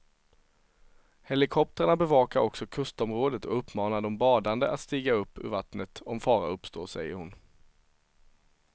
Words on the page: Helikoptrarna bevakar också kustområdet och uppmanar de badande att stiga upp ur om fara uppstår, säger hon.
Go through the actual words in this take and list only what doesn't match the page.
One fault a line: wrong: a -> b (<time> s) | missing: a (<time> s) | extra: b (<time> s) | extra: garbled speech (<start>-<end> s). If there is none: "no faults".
extra: vattnet (5.5 s)